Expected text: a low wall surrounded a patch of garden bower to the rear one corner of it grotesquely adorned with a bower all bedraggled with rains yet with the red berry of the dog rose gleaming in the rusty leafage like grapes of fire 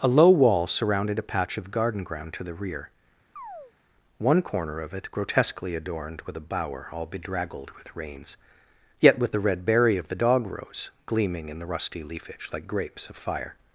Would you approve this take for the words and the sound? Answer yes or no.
no